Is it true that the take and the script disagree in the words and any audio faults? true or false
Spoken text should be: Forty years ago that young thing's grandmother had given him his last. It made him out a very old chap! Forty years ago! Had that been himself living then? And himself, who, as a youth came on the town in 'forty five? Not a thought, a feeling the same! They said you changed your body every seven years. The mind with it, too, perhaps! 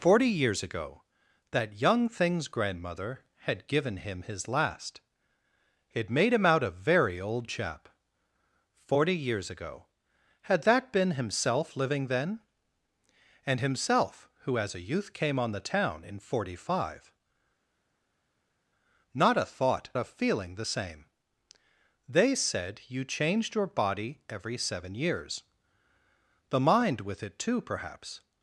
false